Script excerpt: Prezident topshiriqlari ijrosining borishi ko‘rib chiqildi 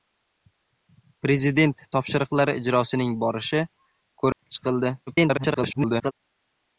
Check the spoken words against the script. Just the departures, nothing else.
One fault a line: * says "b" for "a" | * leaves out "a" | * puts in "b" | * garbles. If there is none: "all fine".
* garbles